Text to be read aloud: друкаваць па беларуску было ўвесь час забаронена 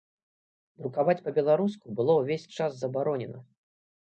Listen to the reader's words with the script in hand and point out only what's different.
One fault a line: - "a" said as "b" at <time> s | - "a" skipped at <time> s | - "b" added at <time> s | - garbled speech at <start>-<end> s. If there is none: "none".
none